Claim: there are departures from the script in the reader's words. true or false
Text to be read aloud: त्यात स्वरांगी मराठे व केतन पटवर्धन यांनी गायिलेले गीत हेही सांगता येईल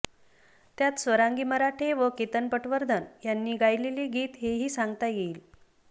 false